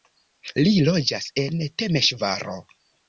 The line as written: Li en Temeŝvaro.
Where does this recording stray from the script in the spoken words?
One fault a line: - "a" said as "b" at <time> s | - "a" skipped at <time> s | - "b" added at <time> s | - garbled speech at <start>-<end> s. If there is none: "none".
- "loĝas" added at 0.9 s